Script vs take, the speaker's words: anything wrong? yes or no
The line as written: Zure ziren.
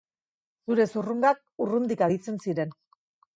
yes